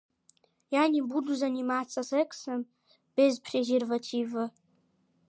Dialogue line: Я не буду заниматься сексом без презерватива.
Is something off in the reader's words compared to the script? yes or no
no